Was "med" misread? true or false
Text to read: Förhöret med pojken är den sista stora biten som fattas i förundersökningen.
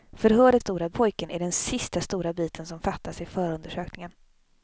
true